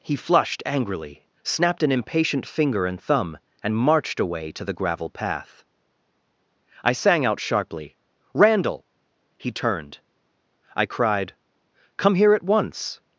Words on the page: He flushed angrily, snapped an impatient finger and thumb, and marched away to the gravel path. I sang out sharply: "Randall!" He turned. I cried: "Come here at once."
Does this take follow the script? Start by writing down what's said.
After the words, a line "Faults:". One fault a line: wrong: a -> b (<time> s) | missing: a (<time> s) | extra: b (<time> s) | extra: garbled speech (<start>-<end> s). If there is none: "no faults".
He flushed angrily, snapped an impatient finger and thumb, and marched away to the gravel path. I sang out sharply: "Randall!" He turned. I cried: "Come here at once."
Faults:
no faults